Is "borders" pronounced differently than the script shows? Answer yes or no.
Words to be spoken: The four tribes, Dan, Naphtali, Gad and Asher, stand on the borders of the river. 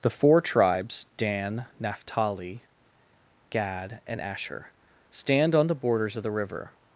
no